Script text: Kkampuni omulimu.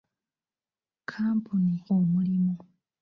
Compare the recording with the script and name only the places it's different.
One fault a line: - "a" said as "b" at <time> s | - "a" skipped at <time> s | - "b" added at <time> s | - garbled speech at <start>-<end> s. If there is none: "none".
none